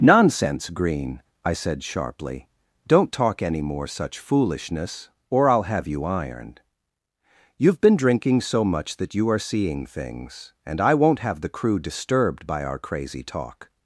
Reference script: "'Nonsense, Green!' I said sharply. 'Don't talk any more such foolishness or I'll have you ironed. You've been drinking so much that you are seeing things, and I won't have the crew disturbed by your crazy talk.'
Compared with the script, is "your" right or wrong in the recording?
wrong